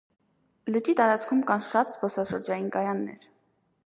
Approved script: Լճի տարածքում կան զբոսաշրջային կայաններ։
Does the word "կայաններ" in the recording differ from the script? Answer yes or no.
no